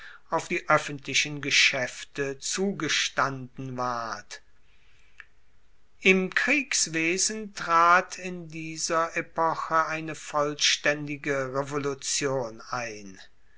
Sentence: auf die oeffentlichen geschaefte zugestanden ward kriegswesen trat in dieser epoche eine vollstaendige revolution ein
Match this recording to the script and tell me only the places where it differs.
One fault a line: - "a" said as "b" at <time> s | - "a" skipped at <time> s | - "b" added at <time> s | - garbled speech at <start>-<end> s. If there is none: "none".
- "im" added at 6.0 s